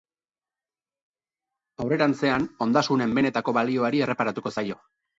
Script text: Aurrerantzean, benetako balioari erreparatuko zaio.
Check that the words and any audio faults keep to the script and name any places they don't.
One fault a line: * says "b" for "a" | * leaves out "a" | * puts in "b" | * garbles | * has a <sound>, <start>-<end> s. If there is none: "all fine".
* puts in "ondasunen"